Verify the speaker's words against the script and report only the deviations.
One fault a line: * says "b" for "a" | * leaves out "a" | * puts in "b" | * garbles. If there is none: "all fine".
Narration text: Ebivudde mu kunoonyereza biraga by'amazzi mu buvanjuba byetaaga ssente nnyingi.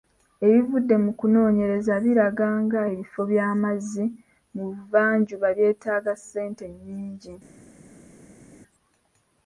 * puts in "nga ebifo"